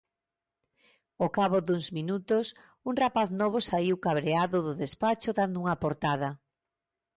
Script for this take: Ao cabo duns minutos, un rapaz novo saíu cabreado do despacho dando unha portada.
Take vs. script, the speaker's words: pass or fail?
pass